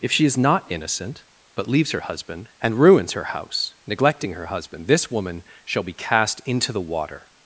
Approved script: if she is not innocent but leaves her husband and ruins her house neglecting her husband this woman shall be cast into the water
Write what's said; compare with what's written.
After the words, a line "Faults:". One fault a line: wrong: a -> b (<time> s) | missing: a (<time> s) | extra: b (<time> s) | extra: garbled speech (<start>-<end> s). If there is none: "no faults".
if she is not innocent but leaves her husband and ruins her house neglecting her husband this woman shall be cast into the water
Faults:
no faults